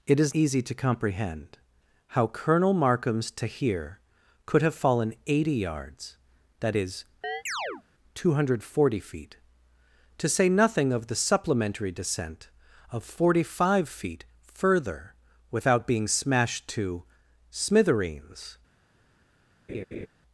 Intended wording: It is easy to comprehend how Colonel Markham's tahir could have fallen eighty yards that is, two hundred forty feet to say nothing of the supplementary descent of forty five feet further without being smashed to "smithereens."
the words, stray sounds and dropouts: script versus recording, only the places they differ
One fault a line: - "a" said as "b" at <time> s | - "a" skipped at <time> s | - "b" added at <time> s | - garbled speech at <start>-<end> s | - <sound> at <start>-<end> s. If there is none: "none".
- chirp at 7.2-7.8 s
- laugh at 19.7-20.1 s